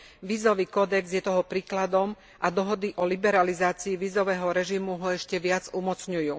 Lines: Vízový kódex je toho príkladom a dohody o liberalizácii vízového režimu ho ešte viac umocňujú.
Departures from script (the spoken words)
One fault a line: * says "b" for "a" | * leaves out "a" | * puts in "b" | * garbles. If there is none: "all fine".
all fine